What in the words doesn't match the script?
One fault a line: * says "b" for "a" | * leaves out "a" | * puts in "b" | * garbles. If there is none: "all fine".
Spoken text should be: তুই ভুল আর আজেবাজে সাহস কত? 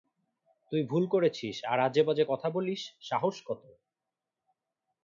* puts in "করেছিস"
* puts in "কথা বলিস"